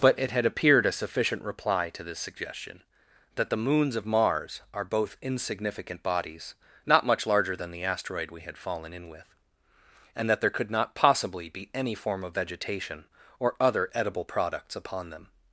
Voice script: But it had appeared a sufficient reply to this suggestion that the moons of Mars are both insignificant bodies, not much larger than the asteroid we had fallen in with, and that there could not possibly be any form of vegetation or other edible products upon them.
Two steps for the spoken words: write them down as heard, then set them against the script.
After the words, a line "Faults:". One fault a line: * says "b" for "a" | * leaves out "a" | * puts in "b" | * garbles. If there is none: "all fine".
But it had appeared a sufficient reply to this suggestion that the moons of Mars are both insignificant bodies, not much larger than the asteroid we had fallen in with, and that there could not possibly be any form of vegetation or other edible products upon them.
Faults:
all fine